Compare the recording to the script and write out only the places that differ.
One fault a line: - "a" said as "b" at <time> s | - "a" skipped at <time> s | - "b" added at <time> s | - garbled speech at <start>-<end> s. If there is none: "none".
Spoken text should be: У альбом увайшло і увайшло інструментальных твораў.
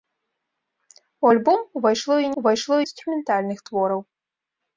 none